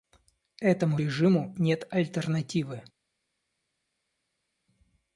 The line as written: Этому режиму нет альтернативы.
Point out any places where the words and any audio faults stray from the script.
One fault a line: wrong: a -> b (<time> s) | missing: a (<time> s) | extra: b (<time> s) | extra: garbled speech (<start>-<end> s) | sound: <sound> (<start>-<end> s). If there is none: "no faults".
no faults